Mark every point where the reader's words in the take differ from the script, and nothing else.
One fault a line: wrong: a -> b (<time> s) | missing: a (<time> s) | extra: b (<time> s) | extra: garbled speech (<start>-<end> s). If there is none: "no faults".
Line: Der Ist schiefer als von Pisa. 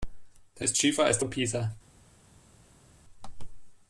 no faults